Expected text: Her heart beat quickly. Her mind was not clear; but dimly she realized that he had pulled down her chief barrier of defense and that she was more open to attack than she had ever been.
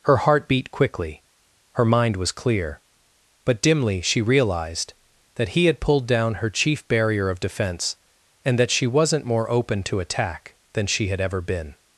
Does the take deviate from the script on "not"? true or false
true